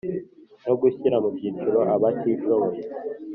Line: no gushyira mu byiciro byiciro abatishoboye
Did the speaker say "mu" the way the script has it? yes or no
yes